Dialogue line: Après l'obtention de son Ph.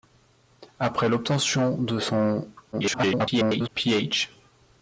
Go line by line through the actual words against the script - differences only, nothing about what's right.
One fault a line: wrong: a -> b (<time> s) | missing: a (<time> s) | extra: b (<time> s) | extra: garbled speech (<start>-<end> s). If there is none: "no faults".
extra: garbled speech (2.7-3.7 s)